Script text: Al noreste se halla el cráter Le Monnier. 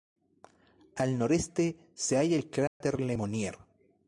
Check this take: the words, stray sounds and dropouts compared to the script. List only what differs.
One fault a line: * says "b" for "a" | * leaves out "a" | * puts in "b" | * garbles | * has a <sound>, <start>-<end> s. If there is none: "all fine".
* has a dropout, 2.7-2.8 s